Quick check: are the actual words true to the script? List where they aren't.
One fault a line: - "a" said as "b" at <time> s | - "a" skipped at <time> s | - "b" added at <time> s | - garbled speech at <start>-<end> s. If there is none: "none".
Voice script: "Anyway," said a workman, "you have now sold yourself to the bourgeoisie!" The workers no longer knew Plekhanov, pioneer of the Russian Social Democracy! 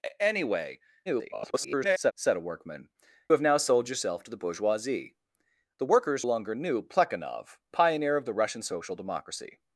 - garbled speech at 1.1-2.1 s
- "you" skipped at 2.9 s
- "no" skipped at 6.2 s